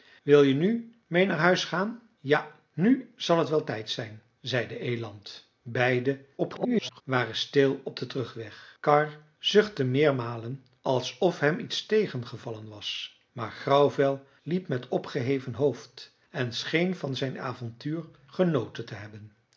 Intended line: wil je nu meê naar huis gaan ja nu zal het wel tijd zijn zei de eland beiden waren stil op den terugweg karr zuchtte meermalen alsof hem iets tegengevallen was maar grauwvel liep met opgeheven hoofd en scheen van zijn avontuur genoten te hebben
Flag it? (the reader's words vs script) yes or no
yes